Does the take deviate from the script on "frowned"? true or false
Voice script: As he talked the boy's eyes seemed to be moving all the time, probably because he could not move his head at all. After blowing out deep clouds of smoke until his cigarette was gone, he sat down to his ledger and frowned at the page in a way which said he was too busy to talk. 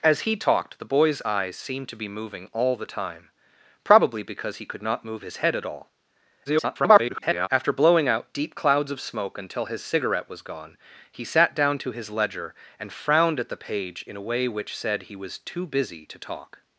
false